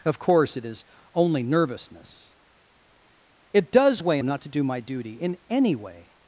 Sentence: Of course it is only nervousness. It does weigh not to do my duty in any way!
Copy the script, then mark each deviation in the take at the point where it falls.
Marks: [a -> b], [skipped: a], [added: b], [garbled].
Of course it is only nervousness. It does weigh not to do my duty in any way!